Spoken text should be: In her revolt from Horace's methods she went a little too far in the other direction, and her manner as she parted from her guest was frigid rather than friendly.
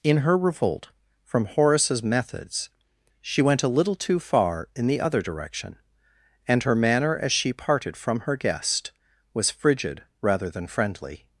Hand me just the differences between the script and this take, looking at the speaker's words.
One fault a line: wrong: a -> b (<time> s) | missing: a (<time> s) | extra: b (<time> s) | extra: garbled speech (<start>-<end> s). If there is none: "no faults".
no faults